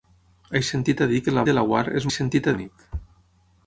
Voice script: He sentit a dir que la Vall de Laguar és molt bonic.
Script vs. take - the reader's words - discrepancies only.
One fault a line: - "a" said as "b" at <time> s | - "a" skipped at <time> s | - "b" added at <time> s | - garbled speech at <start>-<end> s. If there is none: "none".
- "Vall" skipped at 1.4 s
- "molt" said as "sentit" at 2.2 s